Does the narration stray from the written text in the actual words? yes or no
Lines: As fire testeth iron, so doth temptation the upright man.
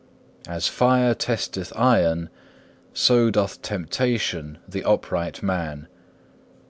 no